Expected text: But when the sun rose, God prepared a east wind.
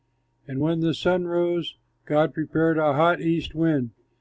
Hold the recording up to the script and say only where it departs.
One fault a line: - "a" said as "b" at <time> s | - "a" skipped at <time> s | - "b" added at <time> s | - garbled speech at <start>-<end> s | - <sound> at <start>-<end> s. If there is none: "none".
- "But" said as "And" at 0.5 s
- "hot" added at 2.9 s